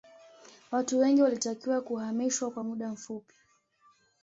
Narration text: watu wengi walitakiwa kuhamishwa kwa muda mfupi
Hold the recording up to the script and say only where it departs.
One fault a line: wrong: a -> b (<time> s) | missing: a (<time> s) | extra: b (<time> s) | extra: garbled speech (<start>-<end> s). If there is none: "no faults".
no faults